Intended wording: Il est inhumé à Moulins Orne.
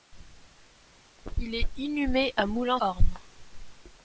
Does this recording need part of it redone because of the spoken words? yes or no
no